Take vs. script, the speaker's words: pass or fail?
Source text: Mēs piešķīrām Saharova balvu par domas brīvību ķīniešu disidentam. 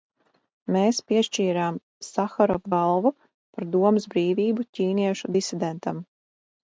pass